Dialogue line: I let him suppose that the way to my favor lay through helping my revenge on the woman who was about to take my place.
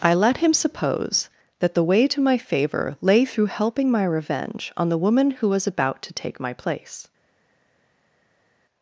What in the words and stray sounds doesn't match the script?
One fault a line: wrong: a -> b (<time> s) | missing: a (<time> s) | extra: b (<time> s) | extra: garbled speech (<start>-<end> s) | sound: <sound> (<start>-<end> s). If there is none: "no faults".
no faults